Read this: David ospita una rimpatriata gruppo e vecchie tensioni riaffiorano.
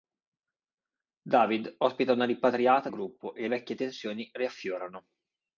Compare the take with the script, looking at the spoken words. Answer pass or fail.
pass